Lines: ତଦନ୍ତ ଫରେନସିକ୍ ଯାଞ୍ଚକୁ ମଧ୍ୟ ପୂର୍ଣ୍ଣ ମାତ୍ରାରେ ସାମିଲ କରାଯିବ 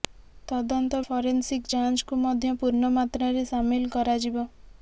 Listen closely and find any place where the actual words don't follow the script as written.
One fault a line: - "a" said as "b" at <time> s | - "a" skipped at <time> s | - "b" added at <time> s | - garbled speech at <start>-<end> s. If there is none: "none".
none